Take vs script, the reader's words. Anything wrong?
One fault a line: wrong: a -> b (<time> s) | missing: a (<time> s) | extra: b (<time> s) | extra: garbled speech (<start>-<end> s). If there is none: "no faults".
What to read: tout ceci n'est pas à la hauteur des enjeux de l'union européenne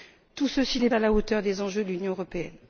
missing: pas (0.9 s)